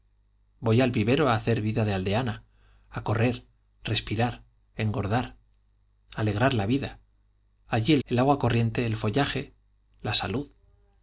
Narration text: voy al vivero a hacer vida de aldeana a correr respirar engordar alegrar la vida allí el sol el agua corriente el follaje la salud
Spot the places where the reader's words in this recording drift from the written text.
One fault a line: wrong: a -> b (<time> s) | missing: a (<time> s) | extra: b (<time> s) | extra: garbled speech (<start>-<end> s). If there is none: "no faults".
missing: sol (8.0 s)